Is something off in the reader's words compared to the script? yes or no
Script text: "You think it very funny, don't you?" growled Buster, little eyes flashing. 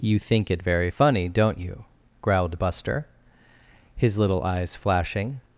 yes